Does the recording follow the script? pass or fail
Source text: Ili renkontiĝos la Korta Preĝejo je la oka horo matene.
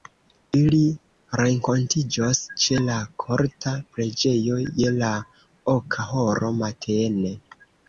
fail